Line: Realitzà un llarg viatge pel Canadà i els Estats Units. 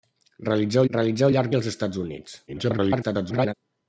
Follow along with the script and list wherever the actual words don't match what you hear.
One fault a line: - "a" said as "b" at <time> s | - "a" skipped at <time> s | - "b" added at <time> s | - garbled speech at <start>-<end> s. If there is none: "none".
- "realitzà" added at 0.9 s
- "viatge pel Canadà" skipped at 1.5 s
- garbled speech at 2.5-3.5 s